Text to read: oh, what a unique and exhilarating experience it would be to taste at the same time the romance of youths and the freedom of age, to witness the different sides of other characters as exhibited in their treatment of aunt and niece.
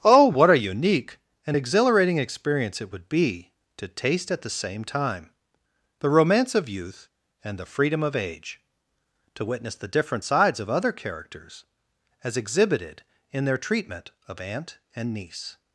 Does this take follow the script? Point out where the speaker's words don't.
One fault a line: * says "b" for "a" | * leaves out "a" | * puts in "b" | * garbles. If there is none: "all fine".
* says "youth" for "youths"